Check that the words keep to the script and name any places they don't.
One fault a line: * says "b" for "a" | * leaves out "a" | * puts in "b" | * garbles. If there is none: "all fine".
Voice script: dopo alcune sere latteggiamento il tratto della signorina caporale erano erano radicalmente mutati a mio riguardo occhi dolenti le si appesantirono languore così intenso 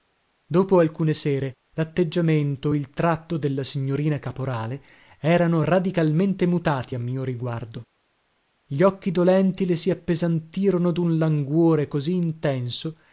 * leaves out "erano"
* puts in "gli"
* puts in "dun"